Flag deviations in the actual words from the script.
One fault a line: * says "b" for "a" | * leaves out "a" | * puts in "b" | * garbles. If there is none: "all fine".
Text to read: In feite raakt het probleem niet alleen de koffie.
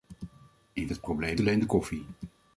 * leaves out "feite raakt"
* leaves out "niet"